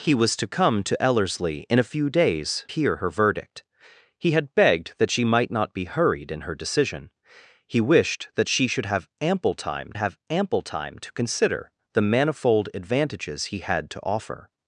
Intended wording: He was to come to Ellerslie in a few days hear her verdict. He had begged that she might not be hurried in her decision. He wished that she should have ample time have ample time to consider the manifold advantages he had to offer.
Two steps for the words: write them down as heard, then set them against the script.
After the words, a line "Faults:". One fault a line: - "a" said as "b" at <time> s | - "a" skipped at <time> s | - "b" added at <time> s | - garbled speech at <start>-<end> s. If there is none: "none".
He was to come to Ellerslie in a few days hear her verdict. He had begged that she might not be hurried in her decision. He wished that she should have ample time have ample time to consider the manifold advantages he had to offer.
Faults:
none